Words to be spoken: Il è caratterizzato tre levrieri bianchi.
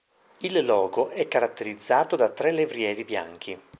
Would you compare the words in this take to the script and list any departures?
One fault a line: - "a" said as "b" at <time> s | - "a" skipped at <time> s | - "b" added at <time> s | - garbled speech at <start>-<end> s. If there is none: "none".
- "logo" added at 0.7 s
- "da" added at 2.1 s